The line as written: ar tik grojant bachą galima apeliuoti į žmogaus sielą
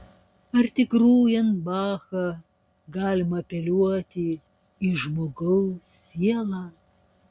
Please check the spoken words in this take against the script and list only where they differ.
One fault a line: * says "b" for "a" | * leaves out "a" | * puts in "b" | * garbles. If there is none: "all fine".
all fine